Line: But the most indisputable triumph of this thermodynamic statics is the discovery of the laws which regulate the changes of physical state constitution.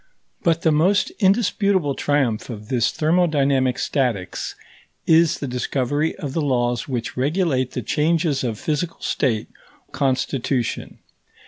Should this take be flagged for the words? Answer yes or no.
no